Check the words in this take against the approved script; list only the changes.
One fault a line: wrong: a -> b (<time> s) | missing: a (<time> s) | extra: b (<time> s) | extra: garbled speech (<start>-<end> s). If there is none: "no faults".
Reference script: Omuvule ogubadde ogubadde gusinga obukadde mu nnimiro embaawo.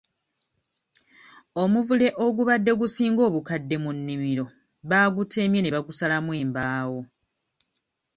missing: ogubadde (2.7 s)
extra: baagutemye ne bagusalamu (4.9 s)